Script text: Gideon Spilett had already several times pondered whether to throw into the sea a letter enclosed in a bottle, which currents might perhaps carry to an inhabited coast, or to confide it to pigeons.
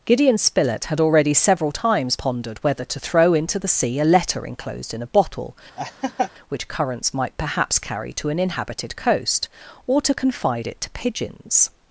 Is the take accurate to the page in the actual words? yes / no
yes